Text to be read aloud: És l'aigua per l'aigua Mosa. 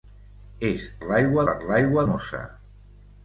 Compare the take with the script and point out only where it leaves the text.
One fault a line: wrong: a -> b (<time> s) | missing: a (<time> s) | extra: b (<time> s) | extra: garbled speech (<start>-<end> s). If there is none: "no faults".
no faults